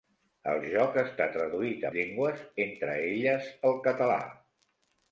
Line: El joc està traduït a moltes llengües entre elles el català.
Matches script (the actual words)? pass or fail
fail